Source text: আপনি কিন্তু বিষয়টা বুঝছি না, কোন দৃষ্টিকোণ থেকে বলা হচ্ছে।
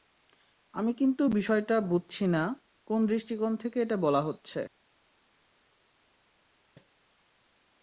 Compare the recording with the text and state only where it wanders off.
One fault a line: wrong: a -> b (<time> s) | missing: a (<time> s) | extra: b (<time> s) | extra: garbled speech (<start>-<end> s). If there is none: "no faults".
wrong: আপনি -> আমি (0.7 s)
extra: এটা (3.8 s)